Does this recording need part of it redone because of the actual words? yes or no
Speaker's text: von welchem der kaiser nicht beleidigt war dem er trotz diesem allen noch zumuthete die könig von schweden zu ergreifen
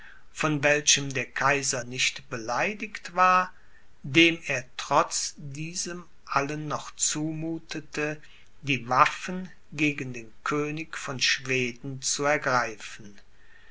yes